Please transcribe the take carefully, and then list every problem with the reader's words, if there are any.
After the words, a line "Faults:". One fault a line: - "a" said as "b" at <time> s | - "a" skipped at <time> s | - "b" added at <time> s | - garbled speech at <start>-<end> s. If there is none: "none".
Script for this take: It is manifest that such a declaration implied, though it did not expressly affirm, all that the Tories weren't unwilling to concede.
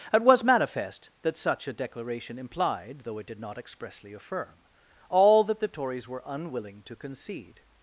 It was manifest that such a declaration implied, though it did not expressly affirm, all that the Tories were unwilling to concede.
Faults:
- "is" said as "was" at 0.2 s
- "weren't" said as "were" at 6.1 s